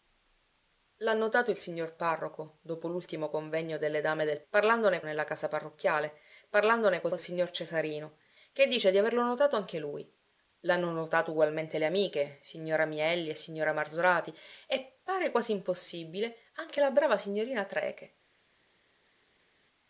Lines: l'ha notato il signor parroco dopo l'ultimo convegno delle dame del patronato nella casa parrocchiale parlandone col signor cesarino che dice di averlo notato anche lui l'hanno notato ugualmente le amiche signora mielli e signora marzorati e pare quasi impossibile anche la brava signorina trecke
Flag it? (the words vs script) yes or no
yes